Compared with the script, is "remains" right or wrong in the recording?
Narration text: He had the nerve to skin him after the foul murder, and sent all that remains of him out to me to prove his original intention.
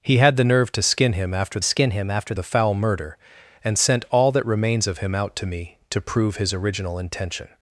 right